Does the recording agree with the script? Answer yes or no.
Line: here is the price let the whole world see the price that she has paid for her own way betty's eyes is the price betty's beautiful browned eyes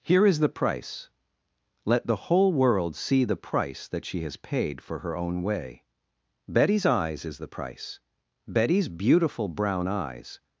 no